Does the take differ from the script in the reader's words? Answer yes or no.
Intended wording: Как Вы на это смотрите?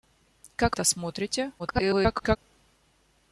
yes